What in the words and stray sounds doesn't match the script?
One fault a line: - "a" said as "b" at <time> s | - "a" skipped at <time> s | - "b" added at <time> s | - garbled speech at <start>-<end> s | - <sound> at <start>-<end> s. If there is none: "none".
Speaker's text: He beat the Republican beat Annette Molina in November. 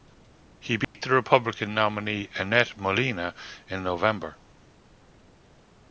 - dropout at 0.8-0.9 s
- "beat" said as "nominee" at 1.7 s